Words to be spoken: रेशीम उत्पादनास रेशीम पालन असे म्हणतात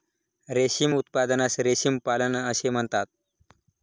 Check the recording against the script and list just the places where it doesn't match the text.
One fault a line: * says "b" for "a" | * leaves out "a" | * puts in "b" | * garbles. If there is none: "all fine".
all fine